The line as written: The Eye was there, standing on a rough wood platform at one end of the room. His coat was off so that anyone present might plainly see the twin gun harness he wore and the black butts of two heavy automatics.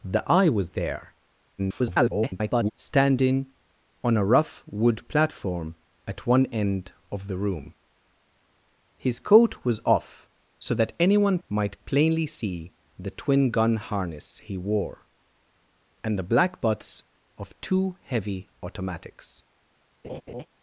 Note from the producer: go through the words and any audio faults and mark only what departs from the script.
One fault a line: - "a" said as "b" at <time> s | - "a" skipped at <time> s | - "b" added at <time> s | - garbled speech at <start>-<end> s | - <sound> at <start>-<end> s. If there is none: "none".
- garbled speech at 1.6-2.7 s
- "present" skipped at 11.4 s
- laugh at 20.0-20.5 s